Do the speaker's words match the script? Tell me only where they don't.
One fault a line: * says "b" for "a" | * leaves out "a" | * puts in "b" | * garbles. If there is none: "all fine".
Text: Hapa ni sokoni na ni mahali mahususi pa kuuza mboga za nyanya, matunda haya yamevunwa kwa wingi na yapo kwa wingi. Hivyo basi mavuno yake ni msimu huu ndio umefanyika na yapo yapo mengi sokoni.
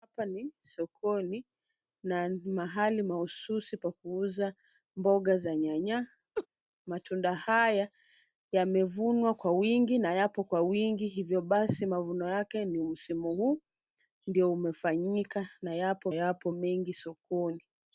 all fine